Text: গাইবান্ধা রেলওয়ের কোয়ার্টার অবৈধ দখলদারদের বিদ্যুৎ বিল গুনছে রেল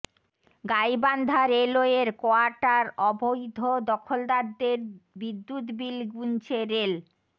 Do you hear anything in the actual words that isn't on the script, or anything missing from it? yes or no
no